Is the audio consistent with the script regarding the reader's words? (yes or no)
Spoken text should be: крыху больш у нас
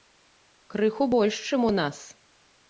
no